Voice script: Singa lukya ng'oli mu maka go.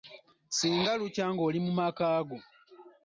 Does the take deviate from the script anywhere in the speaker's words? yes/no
no